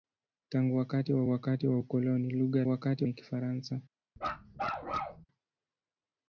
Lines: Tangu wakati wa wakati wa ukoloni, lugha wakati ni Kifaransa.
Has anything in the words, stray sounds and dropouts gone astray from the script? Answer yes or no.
yes